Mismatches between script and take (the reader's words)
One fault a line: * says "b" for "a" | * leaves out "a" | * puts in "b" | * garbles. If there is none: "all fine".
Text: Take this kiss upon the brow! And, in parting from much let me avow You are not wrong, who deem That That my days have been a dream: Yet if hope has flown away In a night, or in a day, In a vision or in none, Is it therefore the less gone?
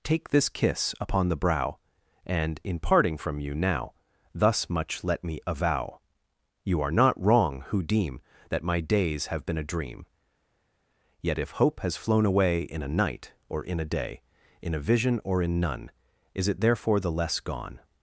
* puts in "you now Thus"
* leaves out "That"